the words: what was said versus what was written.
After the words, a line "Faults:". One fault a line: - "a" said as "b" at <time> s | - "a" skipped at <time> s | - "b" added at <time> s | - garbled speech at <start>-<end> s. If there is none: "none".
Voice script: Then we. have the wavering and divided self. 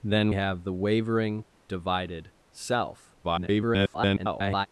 Then. have the wavering divided self. [garbled]
Faults:
- "we" skipped at 0.3 s
- "and" skipped at 1.4 s
- garbled speech at 3.2-4.7 s